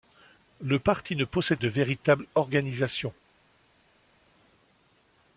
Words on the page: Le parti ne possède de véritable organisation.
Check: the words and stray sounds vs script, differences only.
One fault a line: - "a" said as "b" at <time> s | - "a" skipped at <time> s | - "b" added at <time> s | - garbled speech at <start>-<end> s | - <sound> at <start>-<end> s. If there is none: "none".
none